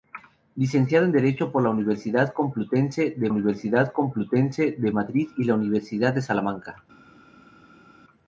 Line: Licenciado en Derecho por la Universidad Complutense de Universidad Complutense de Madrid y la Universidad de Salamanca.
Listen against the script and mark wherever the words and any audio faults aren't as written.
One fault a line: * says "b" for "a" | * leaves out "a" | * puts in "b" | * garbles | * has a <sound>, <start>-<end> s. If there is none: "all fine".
all fine